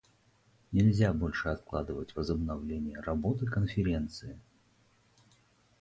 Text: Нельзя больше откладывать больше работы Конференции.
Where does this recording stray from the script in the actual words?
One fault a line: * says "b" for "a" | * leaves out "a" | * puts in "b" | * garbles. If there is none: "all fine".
* says "возобновление" for "больше"